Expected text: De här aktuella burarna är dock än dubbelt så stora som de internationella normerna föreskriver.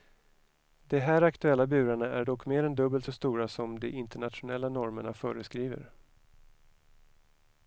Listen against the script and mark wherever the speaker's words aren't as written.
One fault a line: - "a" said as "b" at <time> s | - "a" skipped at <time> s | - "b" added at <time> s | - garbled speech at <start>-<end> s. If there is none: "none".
- "mer" added at 2.5 s